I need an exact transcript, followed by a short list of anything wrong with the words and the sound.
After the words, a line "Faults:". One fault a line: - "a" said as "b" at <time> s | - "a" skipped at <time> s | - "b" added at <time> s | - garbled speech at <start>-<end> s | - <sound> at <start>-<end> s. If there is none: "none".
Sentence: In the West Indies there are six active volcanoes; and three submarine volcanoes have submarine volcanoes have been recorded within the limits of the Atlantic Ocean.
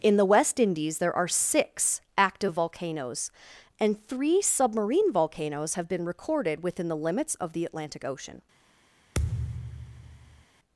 In the West Indies there are six active volcanoes; and three submarine volcanoes have been recorded within the limits of the Atlantic Ocean.
Faults:
- "submarine volcanoes have" skipped at 5.9 s
- thud at 9.1-10.4 s